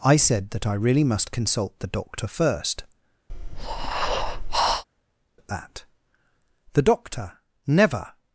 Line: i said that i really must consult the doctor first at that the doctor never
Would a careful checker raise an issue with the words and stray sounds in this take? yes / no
yes